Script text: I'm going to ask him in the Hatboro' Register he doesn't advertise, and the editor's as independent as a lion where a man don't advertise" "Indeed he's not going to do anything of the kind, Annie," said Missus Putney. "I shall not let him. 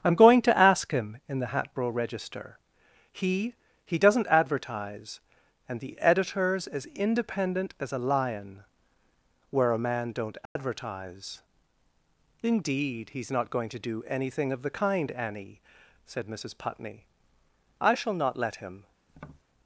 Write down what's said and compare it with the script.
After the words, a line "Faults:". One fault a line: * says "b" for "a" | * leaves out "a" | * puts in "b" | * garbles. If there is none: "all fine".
I'm going to ask him in the Hatboro' Register he he doesn't advertise, and the editor's as independent as a lion where a man don't advertise" "Indeed he's not going to do anything of the kind, Annie," said Missus Putney. "I shall not let him.
Faults:
* puts in "he"